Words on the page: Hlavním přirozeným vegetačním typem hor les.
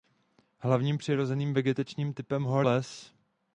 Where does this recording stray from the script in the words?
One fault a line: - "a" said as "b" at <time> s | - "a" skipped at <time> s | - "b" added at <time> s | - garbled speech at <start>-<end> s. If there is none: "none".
none